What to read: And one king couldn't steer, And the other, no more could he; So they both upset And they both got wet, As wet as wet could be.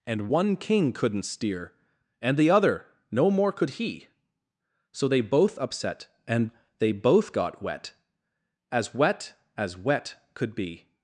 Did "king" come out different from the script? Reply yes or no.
no